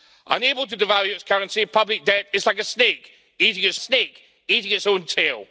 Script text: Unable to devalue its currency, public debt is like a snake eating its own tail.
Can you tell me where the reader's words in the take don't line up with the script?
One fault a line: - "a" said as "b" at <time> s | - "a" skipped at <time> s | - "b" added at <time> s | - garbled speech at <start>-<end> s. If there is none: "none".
- "snake eating its" added at 3.8 s